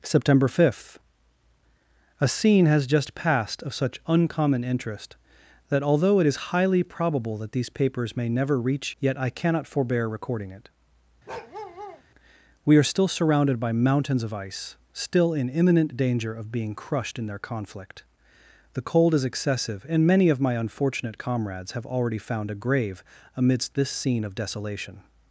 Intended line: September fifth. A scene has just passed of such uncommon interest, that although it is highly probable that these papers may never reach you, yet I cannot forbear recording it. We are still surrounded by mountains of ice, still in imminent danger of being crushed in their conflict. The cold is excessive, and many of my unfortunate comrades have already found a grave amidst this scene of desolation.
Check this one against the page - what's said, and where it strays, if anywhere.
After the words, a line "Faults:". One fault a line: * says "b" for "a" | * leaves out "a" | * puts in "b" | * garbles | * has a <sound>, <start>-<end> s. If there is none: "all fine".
September fifth. A scene has just passed of such uncommon interest, that although it is highly probable that these papers may never reach yet I cannot forbear recording it. We are still surrounded by mountains of ice, still in imminent danger of being crushed in their conflict. The cold is excessive, and many of my unfortunate comrades have already found a grave amidst this scene of desolation.
Faults:
* leaves out "you"
* has a bark, 11.3-12.0 s